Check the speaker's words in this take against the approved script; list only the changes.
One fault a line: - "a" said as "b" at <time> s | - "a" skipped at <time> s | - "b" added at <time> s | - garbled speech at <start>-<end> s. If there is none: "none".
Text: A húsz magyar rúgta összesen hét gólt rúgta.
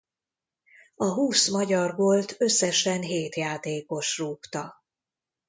- "rúgta" said as "gólt" at 1.9 s
- "gólt" said as "játékos" at 3.3 s